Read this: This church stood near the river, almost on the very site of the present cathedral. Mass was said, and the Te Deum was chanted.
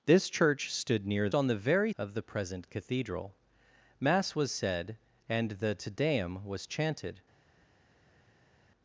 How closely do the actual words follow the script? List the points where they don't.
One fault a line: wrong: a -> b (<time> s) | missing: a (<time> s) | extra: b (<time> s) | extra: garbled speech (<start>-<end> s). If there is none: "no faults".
missing: the river almost (1.3 s)
missing: site (1.9 s)